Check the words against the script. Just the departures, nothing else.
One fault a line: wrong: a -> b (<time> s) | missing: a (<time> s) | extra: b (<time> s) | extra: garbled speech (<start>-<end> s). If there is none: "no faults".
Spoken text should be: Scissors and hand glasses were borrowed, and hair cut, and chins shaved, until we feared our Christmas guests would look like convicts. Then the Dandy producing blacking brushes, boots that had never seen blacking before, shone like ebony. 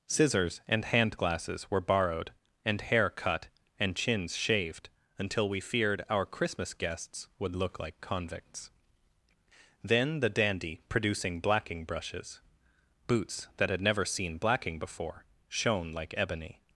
no faults